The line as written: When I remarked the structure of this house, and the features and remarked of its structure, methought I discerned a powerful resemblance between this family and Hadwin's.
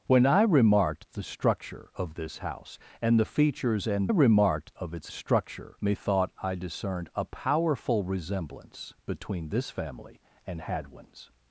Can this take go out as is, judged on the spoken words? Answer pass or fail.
pass